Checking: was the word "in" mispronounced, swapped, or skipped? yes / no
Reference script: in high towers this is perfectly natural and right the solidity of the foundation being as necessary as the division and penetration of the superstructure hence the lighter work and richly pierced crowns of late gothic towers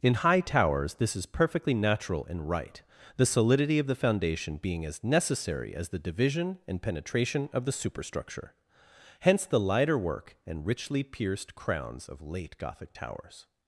no